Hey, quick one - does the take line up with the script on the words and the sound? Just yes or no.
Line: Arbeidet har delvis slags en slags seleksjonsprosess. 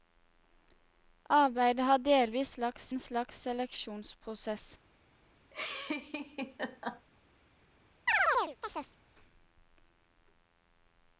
no